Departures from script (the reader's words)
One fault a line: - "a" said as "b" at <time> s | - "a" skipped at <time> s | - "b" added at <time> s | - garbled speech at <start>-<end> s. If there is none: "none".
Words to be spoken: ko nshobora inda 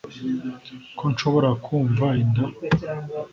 - "kumva" added at 1.6 s